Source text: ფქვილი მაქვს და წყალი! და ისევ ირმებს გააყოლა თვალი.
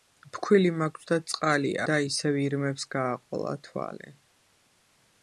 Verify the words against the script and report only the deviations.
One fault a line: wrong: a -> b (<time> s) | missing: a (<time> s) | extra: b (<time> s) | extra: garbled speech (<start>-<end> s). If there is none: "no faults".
no faults